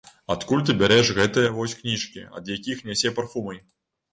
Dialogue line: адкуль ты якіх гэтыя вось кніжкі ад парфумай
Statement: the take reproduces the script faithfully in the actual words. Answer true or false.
false